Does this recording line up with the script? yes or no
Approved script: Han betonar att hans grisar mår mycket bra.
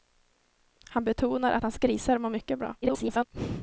no